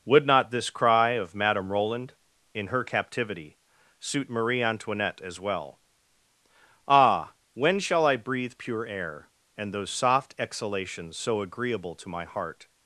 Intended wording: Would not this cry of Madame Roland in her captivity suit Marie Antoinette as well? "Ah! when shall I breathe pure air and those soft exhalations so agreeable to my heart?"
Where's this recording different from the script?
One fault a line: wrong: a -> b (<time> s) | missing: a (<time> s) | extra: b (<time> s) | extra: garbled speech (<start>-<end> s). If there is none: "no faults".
no faults